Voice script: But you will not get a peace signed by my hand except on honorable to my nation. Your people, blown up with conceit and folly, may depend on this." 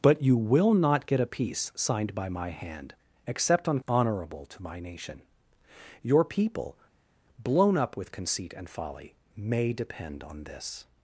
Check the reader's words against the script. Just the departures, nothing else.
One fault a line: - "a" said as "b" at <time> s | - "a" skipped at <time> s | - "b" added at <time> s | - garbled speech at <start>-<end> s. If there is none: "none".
none